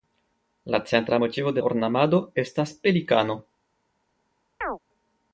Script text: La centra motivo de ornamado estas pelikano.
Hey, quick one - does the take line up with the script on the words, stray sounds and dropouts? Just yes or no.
no